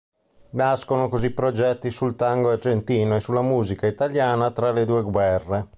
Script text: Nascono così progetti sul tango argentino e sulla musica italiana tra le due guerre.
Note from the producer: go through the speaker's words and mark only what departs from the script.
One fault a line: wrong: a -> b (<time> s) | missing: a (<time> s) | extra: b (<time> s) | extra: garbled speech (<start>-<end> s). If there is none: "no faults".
no faults